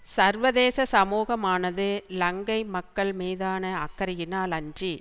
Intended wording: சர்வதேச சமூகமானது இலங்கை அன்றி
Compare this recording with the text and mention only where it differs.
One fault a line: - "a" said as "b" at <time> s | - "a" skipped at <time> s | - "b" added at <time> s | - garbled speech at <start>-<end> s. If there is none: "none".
- "மக்கள் மீதான அக்கறையினால்" added at 2.8 s